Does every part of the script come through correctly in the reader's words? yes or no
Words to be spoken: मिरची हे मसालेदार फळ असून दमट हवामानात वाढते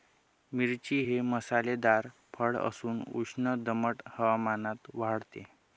no